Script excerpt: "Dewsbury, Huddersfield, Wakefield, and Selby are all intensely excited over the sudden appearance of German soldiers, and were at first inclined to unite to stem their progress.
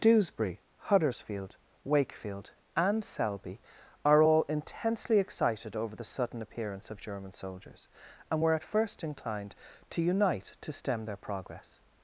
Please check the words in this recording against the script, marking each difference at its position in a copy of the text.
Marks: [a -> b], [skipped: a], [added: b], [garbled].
"Dewsbury, Huddersfield, Wakefield, and Selby are all intensely excited over the sudden appearance of German soldiers, and were at first inclined to unite to stem their progress.